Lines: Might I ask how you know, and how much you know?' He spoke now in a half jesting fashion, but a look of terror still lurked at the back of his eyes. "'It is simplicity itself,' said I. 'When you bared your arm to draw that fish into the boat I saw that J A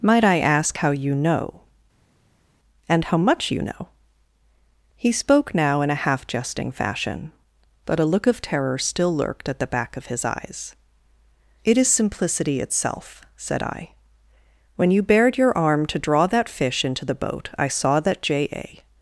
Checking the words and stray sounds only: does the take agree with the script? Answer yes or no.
yes